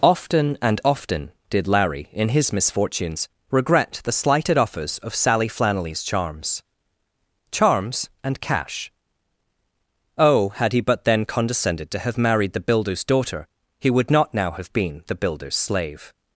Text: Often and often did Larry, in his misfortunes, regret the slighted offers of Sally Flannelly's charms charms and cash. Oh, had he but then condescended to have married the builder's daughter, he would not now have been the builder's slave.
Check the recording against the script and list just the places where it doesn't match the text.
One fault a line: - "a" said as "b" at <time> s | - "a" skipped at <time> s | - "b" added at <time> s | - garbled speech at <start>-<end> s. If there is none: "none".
none